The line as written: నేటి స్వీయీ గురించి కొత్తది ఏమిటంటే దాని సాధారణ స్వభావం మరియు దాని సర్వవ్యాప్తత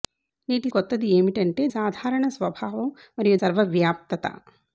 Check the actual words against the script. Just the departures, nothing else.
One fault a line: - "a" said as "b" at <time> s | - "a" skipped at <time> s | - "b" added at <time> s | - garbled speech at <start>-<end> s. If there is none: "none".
- "స్వీయీ గురించి" skipped at 0.7 s
- "దాని" skipped at 1.7 s
- "దాని" skipped at 3.4 s